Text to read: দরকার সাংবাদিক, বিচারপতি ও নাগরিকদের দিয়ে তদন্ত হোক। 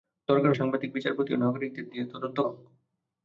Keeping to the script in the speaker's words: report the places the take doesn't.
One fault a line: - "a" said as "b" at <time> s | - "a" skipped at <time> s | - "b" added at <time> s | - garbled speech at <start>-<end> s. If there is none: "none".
none